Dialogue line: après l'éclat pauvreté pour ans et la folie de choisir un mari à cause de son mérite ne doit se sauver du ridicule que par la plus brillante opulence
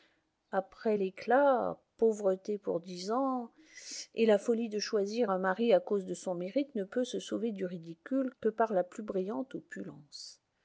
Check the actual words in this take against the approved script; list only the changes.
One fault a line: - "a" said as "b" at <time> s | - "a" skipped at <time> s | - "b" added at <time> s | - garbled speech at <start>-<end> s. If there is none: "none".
- "dix" added at 2.8 s
- "doit" said as "peut" at 6.8 s